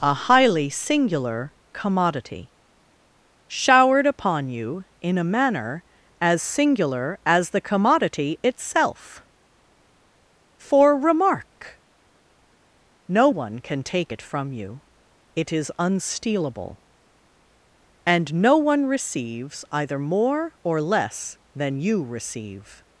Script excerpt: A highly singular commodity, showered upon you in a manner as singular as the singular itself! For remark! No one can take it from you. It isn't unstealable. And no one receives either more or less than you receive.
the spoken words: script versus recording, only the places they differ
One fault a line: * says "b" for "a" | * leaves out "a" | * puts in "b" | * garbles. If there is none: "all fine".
* says "commodity" for "singular"
* says "is" for "isn't"